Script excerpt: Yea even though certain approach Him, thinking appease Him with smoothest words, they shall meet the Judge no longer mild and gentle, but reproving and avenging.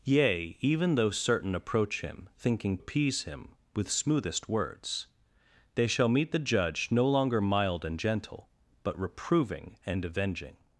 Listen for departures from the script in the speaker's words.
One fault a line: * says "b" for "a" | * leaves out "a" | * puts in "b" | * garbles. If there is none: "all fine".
all fine